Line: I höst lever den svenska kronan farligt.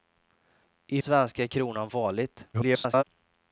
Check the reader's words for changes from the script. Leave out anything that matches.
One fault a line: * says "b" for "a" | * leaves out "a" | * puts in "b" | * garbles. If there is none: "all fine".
* leaves out "höst lever den"
* garbles